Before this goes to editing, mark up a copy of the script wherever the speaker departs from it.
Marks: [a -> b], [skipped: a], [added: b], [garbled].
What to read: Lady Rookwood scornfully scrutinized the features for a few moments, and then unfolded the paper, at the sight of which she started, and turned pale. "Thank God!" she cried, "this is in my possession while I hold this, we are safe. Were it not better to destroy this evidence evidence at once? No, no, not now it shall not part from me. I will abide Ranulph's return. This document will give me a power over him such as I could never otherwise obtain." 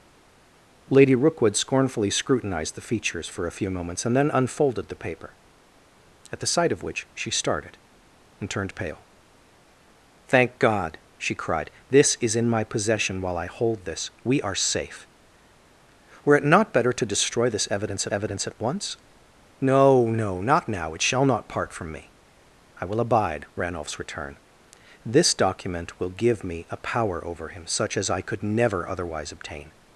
Lady Rookwood scornfully scrutinized the features for a few moments, and then unfolded the paper, at the sight of which she started, and turned pale. "Thank God!" she cried, "this is in my possession while I hold this, we are safe. Were it not better to destroy this evidence evidence at once? No, no, not now it shall not part from me. I will abide Ranulph's return. This document will give me a power over him such as I could never otherwise obtain."